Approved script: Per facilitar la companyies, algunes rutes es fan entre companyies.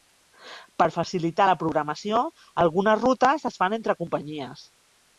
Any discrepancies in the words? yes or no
yes